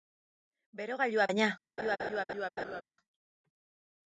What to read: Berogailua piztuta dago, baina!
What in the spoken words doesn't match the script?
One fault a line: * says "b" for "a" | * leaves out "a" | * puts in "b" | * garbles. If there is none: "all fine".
* leaves out "piztuta dago"